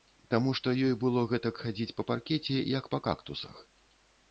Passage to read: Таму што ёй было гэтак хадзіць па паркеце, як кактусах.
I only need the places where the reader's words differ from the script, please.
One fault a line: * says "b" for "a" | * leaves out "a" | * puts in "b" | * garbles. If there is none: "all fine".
* puts in "па"